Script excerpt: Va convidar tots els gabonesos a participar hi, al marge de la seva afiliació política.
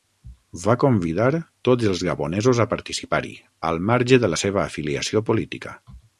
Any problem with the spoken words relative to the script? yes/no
no